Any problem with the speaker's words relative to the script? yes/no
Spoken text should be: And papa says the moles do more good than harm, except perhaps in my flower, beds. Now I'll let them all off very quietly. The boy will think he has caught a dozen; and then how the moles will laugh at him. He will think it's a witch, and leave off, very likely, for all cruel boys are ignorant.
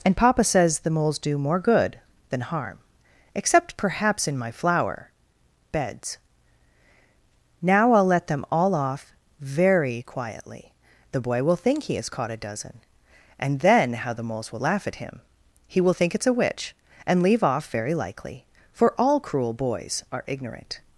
no